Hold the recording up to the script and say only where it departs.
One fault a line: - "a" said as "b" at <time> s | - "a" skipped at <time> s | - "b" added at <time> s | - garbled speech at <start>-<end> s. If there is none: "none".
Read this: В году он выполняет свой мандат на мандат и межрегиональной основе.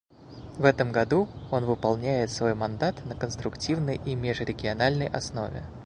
- "этом" added at 0.7 s
- "мандат" said as "конструктивной" at 3.1 s